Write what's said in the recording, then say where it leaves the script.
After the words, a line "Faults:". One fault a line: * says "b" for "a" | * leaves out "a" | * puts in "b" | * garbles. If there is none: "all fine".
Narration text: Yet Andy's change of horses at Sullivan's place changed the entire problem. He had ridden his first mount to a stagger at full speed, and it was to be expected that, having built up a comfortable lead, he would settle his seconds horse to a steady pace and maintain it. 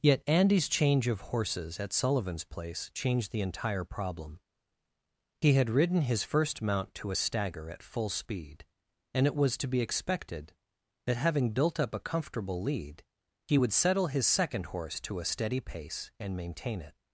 Yet Andy's change of horses at Sullivan's place changed the entire problem. He had ridden his first mount to a stagger at full speed, and it was to be expected that, having built up a comfortable lead, he would settle his second horse to a steady pace and maintain it.
Faults:
* says "second" for "seconds"